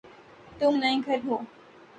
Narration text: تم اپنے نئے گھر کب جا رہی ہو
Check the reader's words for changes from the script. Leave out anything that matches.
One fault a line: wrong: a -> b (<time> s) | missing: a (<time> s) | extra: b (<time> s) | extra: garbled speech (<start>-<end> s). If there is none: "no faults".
missing: اپنے (0.7 s)
missing: کب جا رہی (1.2 s)